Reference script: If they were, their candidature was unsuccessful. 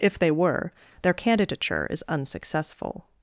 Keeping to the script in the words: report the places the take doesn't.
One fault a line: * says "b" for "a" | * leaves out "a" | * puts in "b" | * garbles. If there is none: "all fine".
* says "is" for "was"